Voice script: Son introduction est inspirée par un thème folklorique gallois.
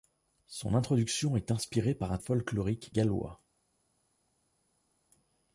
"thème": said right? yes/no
no